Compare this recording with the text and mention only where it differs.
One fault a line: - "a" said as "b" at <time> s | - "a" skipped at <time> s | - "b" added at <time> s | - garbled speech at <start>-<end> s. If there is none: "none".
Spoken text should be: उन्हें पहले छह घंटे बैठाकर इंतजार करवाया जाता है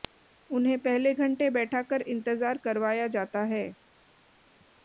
- "छह" skipped at 1.1 s